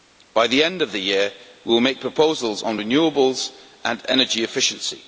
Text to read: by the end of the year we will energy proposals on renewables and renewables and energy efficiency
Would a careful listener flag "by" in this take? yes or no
no